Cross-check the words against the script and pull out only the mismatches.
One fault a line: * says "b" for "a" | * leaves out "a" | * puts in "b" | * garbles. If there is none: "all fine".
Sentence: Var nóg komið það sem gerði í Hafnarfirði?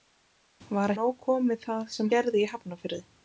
all fine